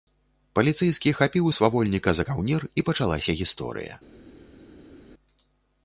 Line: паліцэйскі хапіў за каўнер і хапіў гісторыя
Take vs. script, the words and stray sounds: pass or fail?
fail